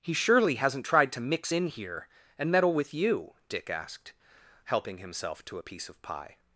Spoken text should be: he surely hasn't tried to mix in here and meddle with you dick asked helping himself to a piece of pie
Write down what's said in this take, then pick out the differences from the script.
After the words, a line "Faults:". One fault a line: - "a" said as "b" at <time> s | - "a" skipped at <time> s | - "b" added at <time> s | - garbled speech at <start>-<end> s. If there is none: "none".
he surely hasn't tried to mix in here and meddle with you dick asked helping himself to a piece of pie
Faults:
none